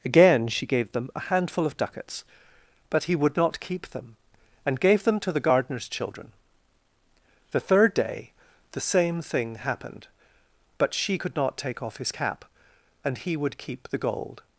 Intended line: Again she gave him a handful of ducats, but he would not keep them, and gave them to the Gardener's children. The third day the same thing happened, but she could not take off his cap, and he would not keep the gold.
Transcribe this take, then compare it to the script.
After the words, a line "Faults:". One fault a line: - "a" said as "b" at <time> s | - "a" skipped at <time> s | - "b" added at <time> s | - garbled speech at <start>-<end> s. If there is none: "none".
Again she gave them a handful of ducats, but he would not keep them, and gave them to the Gardener's children. The third day the same thing happened, but she could not take off his cap, and he would keep the gold.
Faults:
- "him" said as "them" at 0.9 s
- "not" skipped at 13.6 s